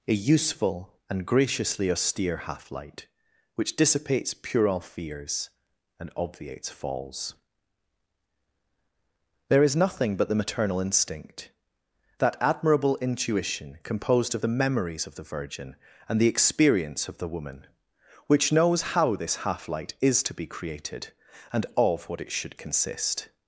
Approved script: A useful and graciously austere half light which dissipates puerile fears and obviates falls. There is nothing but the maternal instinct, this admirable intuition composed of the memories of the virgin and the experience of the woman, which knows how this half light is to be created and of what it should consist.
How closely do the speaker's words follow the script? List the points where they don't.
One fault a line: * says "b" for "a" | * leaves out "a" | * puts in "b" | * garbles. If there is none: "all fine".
* says "that" for "this"